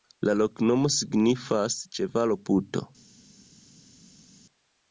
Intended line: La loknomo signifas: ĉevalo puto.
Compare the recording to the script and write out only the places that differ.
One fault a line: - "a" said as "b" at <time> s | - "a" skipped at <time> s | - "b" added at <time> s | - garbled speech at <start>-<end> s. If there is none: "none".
none